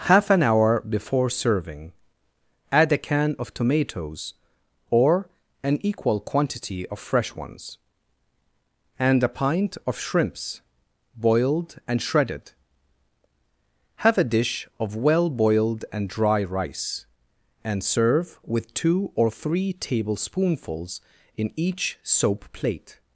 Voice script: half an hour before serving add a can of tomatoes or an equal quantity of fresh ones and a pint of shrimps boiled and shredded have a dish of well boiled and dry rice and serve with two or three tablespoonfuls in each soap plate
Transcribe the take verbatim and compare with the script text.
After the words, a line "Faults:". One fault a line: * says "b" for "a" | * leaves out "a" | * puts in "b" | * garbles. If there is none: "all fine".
half an hour before serving add a can of tomatoes or an equal quantity of fresh ones and a pint of shrimps boiled and shredded have a dish of well boiled and dry rice and serve with two or three tablespoonfuls in each soap plate
Faults:
all fine